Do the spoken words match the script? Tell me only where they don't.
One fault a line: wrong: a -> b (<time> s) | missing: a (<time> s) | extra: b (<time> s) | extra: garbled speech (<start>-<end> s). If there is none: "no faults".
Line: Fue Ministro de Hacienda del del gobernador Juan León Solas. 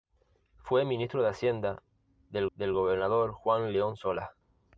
no faults